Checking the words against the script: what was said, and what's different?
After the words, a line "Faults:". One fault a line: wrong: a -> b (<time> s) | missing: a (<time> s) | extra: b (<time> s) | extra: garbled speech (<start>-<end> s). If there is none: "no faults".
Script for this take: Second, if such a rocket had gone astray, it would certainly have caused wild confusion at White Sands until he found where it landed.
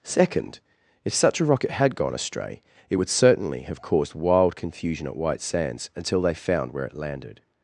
Second, if such a rocket had gone astray, it would certainly have caused wild confusion at White Sands until they found where it landed.
Faults:
wrong: he -> they (6.2 s)